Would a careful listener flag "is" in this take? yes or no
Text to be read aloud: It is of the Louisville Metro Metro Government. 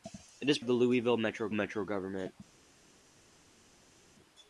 no